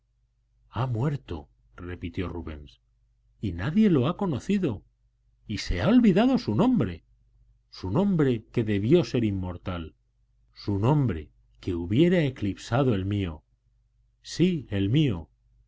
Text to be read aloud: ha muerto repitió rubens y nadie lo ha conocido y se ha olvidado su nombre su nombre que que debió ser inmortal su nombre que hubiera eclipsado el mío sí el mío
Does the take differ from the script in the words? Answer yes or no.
yes